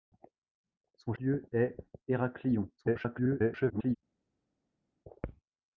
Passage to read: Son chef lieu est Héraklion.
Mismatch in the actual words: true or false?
true